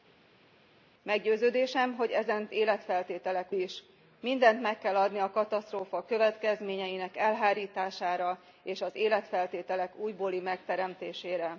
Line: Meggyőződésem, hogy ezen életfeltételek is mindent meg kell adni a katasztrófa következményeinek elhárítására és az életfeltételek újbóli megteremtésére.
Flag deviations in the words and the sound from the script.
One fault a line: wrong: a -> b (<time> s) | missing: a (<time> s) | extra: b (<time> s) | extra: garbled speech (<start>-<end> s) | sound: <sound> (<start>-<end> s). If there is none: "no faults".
no faults